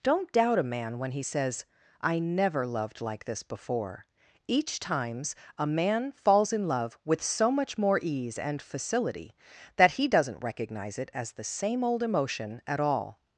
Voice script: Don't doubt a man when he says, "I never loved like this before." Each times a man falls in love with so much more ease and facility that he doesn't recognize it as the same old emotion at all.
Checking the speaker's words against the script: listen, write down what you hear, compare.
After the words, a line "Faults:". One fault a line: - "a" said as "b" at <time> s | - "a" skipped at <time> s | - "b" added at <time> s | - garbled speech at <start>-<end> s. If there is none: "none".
Don't doubt a man when he says, "I never loved like this before." Each times a man falls in love with so much more ease and facility that he doesn't recognize it as the same old emotion at all.
Faults:
none